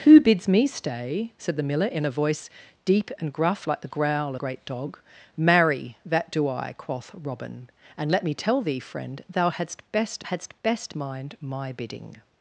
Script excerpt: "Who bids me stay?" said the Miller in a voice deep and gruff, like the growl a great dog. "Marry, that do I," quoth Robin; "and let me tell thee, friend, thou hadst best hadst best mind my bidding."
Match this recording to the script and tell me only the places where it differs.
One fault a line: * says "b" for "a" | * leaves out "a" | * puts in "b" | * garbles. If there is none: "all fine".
all fine